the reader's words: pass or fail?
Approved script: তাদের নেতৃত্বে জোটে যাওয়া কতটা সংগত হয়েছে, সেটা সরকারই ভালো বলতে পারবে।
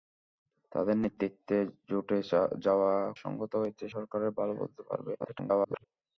fail